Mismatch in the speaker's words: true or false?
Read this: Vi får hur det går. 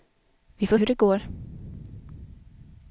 false